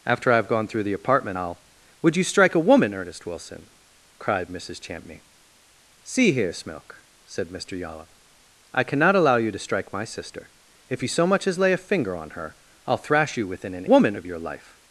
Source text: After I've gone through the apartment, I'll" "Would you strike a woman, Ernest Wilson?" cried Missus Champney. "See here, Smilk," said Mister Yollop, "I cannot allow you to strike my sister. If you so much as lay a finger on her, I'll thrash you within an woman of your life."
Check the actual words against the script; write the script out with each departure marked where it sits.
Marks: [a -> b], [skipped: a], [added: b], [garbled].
After I've gone through the apartment, I'll" "Would you strike a woman, Ernest Wilson?" cried Missus Champney. "See here, Smilk," said Mister Yollop, "I cannot allow you to strike my sister. If you so much as lay a finger on her, I'll thrash you within an woman of your life."